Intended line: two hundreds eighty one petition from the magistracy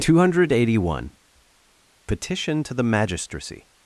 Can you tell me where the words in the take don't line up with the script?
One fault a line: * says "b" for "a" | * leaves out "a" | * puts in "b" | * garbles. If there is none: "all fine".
* says "hundred" for "hundreds"
* says "to" for "from"